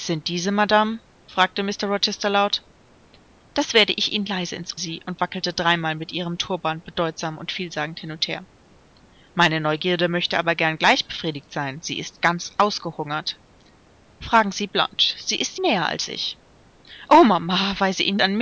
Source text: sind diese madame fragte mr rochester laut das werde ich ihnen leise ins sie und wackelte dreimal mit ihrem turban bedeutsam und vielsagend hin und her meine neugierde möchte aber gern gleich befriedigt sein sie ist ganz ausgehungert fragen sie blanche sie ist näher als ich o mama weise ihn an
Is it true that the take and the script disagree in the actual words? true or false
false